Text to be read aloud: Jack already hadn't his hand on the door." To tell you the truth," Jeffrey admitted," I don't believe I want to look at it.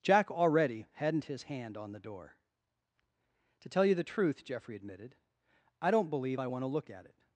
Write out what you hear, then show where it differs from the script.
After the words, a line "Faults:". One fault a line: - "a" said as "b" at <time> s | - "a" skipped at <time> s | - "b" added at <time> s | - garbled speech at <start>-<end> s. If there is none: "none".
Jack already hadn't his hand on the door." To tell you the truth," Jeffrey admitted," I don't believe I want to look at it.
Faults:
none